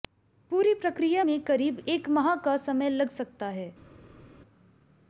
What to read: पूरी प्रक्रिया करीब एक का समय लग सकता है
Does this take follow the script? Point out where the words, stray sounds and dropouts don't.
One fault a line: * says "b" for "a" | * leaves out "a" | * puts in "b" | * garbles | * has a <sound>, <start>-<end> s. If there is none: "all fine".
* puts in "में"
* puts in "माह"